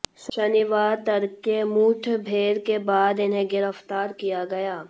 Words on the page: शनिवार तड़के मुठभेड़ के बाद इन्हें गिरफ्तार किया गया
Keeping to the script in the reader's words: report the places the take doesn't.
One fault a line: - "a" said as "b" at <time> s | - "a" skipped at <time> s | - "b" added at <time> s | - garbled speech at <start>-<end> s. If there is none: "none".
none